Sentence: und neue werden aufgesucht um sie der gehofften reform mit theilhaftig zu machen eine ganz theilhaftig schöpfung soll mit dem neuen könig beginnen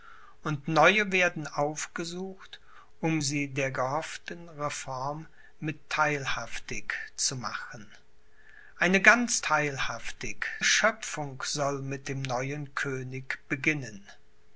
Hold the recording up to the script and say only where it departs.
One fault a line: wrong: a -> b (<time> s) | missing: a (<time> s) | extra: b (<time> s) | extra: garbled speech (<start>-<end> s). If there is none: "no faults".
no faults